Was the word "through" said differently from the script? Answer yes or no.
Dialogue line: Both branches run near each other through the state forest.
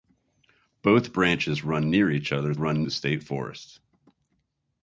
yes